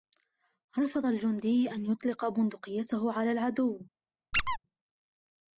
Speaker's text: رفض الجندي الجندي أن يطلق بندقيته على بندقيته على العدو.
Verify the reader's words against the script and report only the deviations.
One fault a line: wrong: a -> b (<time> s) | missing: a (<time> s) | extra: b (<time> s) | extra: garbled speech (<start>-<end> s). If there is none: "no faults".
missing: الجندي (1.7 s)
missing: بندقيته على (3.3 s)